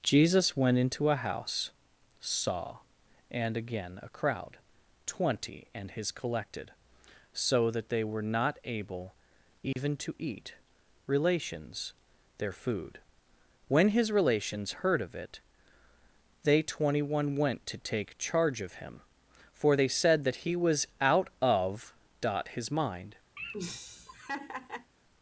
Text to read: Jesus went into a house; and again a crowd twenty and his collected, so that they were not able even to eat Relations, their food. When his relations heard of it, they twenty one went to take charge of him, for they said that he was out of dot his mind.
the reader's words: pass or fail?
fail